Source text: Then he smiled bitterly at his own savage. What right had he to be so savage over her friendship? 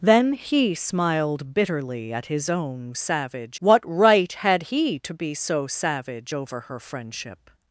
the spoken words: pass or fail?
pass